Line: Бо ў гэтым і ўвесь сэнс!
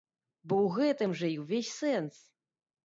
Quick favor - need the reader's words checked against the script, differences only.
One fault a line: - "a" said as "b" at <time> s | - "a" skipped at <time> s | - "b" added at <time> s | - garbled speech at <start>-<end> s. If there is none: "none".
- "жа" added at 1.2 s